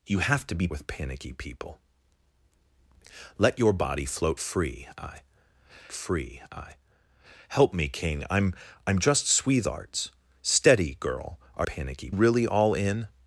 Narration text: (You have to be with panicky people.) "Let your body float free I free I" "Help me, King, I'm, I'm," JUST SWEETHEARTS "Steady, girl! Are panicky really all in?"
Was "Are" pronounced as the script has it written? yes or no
yes